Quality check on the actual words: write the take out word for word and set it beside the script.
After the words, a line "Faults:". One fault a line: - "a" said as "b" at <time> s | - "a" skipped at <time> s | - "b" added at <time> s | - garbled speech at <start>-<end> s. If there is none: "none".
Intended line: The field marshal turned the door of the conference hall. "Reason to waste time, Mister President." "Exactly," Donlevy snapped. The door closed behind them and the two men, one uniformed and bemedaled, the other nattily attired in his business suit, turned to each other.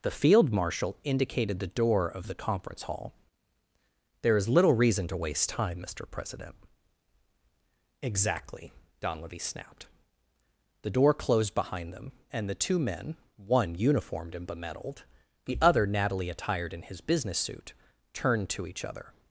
The field marshal indicated the door of the conference hall. "There is little reason to waste time, Mister President." "Exactly," Donlevy snapped. The door closed behind them and the two men, one uniformed and bemedaled, the other nattily attired in his business suit, turned to each other.
Faults:
- "turned" said as "indicated" at 1.0 s
- "There is little" added at 4.2 s